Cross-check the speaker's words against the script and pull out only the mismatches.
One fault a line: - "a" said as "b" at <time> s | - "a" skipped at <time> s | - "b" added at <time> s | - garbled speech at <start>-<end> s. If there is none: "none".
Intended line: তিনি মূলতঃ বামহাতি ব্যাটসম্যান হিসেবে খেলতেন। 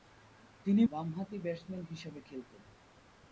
- "মূলতঃ" skipped at 0.8 s